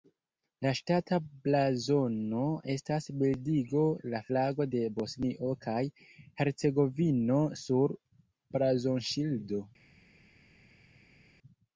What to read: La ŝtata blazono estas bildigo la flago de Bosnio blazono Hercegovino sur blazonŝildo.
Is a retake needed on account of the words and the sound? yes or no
yes